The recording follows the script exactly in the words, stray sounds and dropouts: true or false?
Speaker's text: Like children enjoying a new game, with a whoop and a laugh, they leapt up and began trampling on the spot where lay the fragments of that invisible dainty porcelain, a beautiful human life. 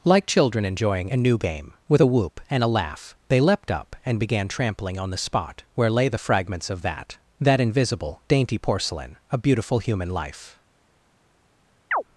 false